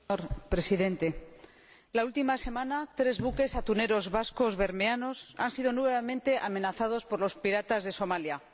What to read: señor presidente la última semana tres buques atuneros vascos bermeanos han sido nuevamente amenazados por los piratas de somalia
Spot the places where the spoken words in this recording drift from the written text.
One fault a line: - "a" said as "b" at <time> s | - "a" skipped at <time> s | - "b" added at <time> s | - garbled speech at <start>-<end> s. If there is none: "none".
none